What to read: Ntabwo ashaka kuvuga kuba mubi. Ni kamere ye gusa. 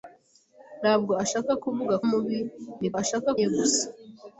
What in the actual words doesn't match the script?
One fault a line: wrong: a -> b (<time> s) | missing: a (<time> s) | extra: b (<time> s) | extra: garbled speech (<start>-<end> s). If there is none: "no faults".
missing: kuba (1.9 s)
wrong: kamere -> ashaka (3.0 s)